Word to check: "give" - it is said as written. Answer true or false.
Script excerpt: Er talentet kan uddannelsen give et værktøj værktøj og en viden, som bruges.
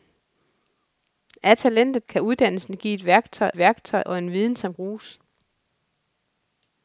true